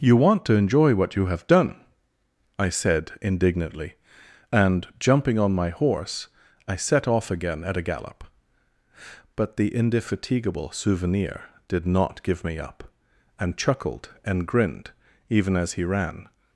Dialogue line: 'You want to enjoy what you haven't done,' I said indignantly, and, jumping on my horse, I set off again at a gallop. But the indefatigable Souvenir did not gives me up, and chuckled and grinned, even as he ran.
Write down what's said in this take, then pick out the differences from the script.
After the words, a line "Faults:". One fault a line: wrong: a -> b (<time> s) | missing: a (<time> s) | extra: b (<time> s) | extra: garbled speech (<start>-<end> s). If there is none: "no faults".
'You want to enjoy what you have done,' I said indignantly, and, jumping on my horse, I set off again at a gallop. But the indefatigable Souvenir did not give me up, and chuckled and grinned, even as he ran.
Faults:
wrong: haven't -> have (1.3 s)
wrong: gives -> give (12.2 s)